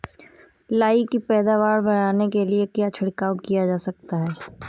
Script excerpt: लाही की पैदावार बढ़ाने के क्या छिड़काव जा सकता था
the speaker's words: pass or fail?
fail